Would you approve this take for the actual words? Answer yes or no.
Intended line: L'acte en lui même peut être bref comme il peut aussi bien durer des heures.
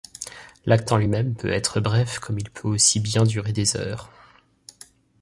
yes